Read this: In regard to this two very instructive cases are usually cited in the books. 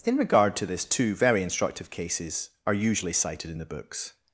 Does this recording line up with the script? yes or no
yes